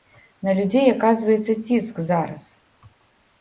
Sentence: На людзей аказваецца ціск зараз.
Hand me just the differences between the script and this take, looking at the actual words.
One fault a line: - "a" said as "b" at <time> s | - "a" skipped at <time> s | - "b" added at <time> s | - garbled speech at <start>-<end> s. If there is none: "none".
none